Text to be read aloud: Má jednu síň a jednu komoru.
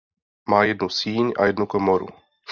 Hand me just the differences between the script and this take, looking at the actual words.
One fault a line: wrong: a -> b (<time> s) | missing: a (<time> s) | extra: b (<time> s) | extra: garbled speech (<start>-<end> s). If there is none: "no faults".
no faults